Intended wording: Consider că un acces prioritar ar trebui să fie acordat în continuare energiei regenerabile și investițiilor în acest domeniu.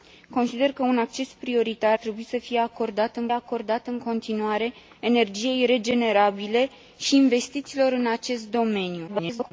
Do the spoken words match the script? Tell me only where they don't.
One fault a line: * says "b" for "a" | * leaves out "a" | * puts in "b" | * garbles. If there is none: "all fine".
* leaves out "ar"
* puts in "acordat în"
* garbles